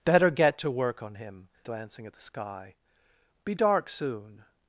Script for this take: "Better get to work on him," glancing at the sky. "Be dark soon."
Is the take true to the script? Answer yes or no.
yes